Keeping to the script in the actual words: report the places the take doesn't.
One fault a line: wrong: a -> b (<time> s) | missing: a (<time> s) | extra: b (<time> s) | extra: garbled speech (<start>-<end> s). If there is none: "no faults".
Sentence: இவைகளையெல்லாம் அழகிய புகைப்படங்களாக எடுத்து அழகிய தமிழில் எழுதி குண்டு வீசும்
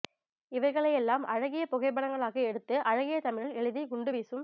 no faults